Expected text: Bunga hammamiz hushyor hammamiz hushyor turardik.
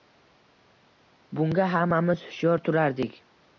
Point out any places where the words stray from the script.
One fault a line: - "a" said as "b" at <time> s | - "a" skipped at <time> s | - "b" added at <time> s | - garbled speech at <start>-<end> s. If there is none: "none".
- "hammamiz hushyor" skipped at 2.7 s